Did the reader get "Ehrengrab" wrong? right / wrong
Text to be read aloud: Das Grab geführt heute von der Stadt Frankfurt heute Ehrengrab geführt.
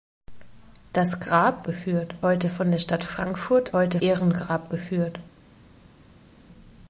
right